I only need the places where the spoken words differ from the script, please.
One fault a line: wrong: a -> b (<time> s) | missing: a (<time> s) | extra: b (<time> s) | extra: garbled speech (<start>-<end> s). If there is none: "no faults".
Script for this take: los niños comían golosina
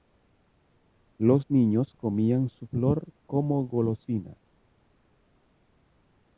extra: su flor como (2.5 s)